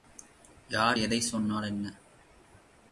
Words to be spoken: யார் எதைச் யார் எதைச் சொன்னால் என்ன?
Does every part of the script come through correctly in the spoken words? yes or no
no